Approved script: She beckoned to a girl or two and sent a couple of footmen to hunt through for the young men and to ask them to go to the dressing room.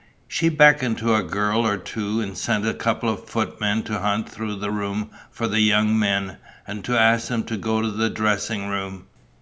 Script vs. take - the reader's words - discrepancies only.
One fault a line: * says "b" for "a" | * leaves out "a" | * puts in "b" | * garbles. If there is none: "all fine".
* puts in "the room"